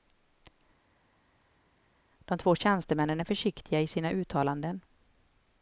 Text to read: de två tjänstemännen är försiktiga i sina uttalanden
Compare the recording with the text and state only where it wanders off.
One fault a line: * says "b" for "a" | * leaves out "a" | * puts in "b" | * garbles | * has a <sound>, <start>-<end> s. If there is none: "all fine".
all fine